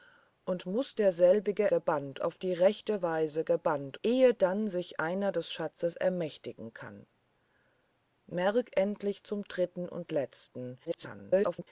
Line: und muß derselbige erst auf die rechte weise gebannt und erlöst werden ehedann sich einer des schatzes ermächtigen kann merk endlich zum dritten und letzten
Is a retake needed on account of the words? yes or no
yes